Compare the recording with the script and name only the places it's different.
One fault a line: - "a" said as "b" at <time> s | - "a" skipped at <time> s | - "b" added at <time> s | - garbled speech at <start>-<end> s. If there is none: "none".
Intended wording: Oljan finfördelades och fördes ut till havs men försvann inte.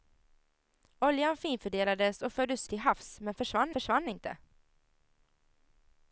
- "ut" skipped at 2.7 s
- "försvann" added at 3.7 s